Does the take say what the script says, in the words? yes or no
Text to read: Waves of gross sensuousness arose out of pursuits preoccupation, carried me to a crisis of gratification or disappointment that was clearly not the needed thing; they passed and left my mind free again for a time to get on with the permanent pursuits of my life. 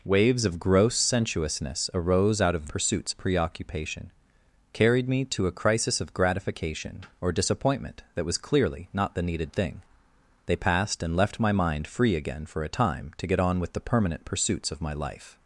yes